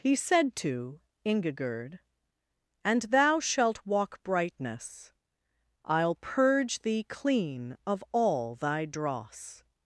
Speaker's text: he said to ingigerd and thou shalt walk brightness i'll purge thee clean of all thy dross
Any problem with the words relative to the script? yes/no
no